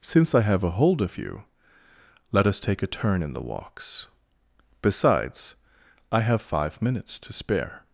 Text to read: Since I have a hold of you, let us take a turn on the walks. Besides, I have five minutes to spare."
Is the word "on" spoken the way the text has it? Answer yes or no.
no